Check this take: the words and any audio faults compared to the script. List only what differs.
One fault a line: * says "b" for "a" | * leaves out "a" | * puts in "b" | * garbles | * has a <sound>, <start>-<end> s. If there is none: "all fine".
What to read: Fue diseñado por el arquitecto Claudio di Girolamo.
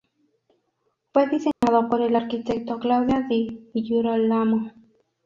* has a dropout, 1.5-1.6 s